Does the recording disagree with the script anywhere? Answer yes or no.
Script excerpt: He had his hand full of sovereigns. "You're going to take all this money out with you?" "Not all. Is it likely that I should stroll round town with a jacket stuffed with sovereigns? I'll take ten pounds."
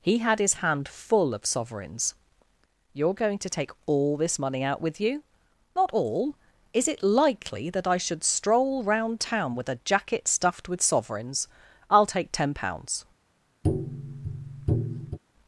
no